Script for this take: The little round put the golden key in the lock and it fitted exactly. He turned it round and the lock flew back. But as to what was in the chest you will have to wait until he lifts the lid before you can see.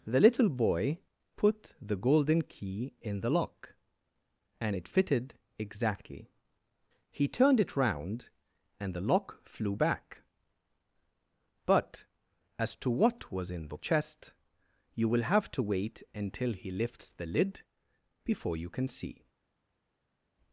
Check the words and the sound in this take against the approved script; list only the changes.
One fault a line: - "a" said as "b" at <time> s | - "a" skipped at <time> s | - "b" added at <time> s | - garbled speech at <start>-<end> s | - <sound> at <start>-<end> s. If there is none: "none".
- "round" said as "boy" at 0.5 s